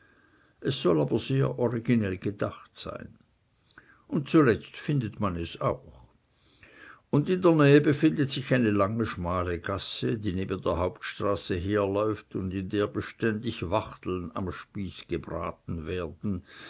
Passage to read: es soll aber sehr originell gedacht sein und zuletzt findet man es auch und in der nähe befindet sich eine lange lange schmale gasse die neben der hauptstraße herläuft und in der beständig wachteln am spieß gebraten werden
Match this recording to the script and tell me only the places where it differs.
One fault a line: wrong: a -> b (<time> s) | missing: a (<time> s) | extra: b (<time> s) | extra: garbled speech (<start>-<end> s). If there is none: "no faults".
missing: lange (9.1 s)